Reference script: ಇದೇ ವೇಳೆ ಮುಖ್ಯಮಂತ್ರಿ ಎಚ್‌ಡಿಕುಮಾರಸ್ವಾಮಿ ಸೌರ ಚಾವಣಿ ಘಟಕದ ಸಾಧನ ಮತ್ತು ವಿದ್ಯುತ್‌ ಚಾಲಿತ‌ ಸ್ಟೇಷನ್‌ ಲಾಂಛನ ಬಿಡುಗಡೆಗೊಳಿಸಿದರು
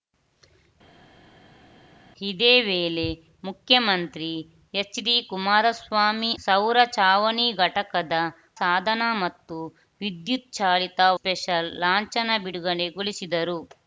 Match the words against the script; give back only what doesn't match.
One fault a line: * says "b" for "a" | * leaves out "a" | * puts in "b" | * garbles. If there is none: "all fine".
all fine